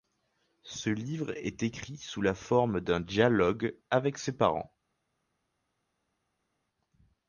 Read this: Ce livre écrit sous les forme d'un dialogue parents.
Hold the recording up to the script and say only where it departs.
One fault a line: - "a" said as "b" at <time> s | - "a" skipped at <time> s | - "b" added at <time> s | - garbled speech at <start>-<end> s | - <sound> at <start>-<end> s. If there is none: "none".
- "est" added at 1.4 s
- "les" said as "la" at 2.2 s
- "avec ses" added at 3.9 s